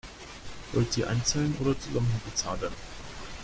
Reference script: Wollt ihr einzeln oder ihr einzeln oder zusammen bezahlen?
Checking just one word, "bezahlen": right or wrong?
right